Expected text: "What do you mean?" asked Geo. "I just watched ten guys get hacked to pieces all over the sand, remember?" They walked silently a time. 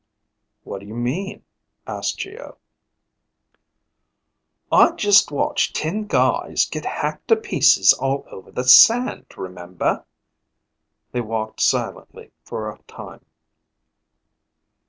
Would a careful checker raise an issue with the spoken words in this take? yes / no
yes